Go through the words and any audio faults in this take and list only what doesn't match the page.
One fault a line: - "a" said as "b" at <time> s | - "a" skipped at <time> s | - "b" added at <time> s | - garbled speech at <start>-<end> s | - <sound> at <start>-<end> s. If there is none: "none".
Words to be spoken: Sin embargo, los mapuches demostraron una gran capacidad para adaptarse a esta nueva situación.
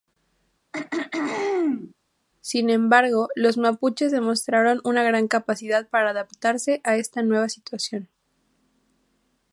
- throat clearing at 0.7-1.9 s